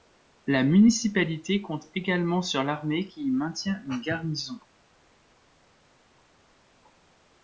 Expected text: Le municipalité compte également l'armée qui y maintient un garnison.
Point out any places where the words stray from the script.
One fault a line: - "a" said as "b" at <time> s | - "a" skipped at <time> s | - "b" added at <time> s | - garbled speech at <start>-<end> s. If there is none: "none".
- "Le" said as "La" at 0.5 s
- "sur" added at 2.4 s
- "un" said as "une" at 3.8 s